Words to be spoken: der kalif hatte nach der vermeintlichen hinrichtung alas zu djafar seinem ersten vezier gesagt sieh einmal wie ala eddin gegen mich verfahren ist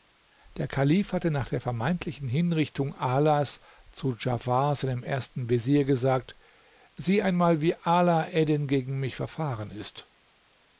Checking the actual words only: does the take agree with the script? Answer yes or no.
yes